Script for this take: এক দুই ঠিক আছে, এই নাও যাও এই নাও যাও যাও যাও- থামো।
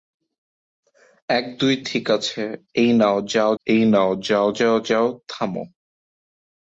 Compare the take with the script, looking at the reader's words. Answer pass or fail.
pass